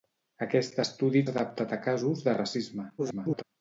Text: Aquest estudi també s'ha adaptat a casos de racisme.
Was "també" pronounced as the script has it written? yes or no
no